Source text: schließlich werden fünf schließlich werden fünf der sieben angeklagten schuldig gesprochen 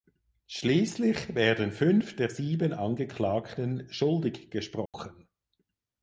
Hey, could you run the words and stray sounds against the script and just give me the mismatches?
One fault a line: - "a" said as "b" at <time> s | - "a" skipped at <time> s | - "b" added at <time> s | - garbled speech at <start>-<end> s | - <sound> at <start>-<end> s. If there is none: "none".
- "schließlich werden fünf" skipped at 2.1 s
- dropout at 4.9-4.9 s